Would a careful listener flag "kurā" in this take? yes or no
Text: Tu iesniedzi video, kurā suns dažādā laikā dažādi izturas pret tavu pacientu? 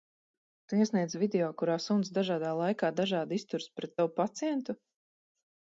no